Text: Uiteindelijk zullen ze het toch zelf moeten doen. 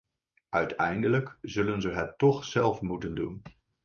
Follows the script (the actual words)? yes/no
yes